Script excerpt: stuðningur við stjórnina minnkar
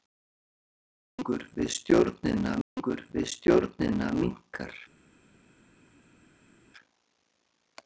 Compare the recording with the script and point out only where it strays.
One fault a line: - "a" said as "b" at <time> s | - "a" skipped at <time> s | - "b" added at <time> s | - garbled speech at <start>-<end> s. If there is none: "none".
- "stuðningur við stjórnina" added at 2.7 s